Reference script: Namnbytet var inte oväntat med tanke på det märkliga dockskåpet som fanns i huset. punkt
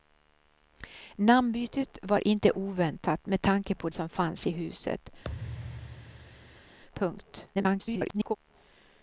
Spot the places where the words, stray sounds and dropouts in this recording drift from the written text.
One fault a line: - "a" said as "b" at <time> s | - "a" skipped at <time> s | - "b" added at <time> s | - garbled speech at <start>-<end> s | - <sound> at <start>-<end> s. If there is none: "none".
- "det märkliga dockskåpet" skipped at 3.9 s
- thud at 5.2-6.8 s
- garbled speech at 7.5-8.4 s